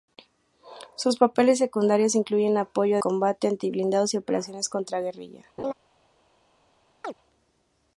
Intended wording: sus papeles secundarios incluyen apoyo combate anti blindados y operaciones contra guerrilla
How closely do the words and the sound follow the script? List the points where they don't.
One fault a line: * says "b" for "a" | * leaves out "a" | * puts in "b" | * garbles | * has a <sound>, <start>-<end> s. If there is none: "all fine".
* has a laugh, 5.6-5.7 s
* has a chirp, 7.0-7.1 s